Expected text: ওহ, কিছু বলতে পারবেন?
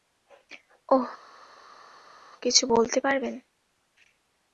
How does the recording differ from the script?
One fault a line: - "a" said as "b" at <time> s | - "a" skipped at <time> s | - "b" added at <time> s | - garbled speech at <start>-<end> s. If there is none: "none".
none